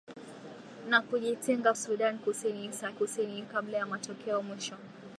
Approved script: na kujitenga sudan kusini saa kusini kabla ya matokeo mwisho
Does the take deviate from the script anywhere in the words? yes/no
no